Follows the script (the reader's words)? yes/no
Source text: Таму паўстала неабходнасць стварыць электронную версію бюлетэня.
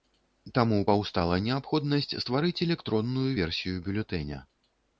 yes